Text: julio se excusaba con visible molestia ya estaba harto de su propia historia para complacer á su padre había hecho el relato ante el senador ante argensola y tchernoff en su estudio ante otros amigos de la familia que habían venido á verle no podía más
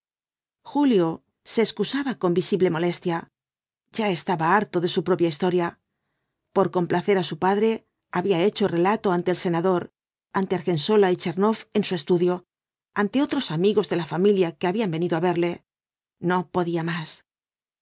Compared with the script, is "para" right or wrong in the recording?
wrong